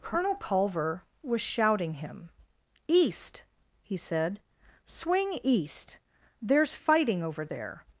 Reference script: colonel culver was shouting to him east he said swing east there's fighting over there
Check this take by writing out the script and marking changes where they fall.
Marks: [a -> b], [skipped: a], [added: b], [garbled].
colonel culver was shouting [skipped: to] him east he said swing east there's fighting over there